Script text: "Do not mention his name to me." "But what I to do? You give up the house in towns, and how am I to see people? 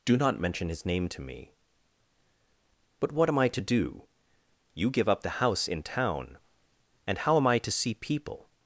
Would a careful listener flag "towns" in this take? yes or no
yes